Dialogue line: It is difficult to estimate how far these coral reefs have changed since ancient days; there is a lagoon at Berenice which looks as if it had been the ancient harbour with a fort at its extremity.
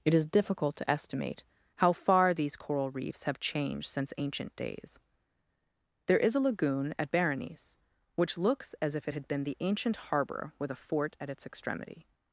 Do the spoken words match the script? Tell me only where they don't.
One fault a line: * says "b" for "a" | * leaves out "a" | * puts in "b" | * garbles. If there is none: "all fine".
all fine